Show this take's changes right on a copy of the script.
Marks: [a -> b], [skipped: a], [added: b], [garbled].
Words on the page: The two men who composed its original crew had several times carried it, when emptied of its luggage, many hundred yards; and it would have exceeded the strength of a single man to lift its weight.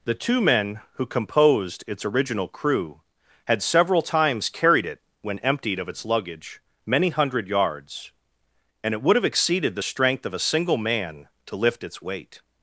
The two men who composed its original crew had several times carried it, when emptied of its luggage, many hundred yards; and it would have exceeded the strength of a single man to lift its weight.